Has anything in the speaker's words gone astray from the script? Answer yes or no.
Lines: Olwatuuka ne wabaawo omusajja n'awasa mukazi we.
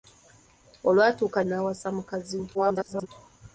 yes